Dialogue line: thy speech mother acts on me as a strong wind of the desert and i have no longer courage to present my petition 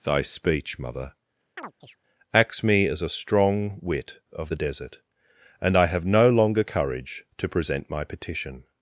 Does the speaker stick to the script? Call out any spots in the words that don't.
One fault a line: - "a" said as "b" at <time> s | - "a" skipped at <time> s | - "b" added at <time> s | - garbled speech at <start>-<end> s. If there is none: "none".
- "on" skipped at 2.6 s
- "wind" said as "wit" at 3.8 s